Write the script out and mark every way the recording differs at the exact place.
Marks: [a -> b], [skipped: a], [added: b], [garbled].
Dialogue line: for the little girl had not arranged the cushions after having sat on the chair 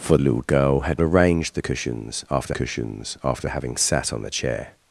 for [skipped: the] little girl had [skipped: not] arranged the cushions after [added: cushions after] having sat on the chair